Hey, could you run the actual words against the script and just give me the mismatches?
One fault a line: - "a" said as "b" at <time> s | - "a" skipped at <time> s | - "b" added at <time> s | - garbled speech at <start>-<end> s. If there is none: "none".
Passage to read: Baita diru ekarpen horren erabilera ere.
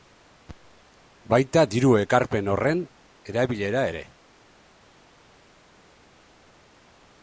none